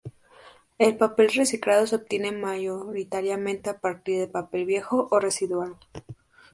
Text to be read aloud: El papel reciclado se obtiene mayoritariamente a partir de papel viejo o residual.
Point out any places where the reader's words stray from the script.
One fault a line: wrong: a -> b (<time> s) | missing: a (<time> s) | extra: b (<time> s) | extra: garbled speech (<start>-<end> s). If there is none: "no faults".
no faults